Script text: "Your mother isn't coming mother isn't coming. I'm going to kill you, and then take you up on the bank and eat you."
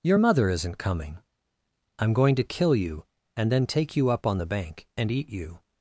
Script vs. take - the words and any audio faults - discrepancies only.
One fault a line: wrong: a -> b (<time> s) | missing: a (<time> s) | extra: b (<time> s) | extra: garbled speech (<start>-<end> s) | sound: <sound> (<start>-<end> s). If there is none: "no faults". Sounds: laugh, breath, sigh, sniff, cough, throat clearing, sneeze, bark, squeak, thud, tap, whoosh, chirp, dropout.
missing: mother isn't coming (1.2 s)